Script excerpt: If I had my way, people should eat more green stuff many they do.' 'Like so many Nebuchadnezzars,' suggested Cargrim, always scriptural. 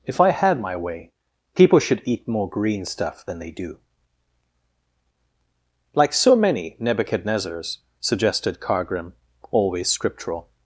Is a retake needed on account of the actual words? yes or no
yes